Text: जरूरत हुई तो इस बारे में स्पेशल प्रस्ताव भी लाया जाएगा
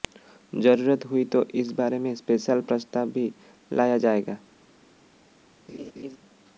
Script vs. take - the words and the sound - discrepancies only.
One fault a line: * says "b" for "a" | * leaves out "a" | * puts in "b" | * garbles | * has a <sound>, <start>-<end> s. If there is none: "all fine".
* has a laugh, 5.7-6.2 s